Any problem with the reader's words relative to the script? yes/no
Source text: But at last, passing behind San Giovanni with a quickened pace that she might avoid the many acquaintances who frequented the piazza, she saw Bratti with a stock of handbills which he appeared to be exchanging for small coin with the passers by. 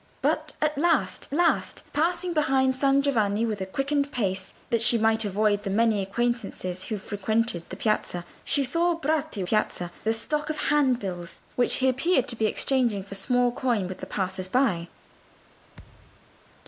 yes